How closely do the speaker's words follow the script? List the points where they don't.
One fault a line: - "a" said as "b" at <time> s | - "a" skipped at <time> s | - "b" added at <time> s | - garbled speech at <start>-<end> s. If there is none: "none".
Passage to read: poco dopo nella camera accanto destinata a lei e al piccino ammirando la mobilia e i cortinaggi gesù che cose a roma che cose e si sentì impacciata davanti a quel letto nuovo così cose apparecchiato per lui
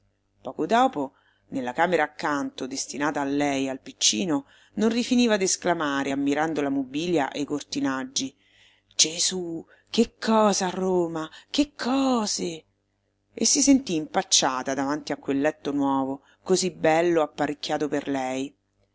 - "non rifiniva d'esclamare" added at 4.8 s
- "cose" said as "bello" at 16.7 s
- "lui" said as "lei" at 18.1 s